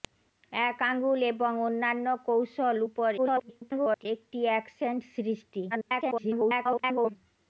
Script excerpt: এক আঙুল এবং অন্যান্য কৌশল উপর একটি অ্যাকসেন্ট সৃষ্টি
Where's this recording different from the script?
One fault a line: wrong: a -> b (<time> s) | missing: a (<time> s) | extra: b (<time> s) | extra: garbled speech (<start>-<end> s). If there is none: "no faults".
extra: garbled speech (3.2-4.1 s)
extra: garbled speech (5.7-7.2 s)